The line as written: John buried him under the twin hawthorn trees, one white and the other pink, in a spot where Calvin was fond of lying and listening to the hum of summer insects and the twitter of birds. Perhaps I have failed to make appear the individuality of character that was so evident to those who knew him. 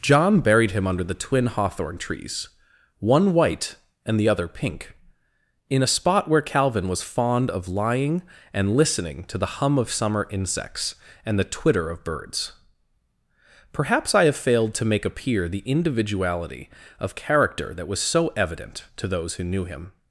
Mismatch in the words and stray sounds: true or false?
false